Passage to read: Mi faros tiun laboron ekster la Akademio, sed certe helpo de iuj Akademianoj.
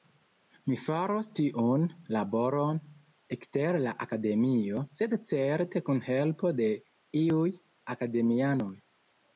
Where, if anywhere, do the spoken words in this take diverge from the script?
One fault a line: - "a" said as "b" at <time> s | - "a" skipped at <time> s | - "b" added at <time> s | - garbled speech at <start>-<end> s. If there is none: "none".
- "kun" added at 5.9 s